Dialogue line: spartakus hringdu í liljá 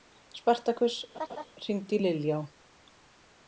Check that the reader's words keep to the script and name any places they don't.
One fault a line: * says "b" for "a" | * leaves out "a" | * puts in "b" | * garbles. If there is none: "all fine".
all fine